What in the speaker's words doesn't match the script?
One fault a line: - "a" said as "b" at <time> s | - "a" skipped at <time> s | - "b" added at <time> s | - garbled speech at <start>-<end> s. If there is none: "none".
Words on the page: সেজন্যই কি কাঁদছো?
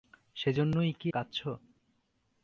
none